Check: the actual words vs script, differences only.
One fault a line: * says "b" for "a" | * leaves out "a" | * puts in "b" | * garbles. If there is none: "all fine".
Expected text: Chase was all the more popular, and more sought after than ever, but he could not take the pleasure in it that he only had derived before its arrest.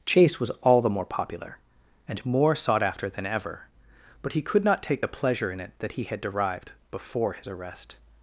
* leaves out "only"
* says "his" for "its"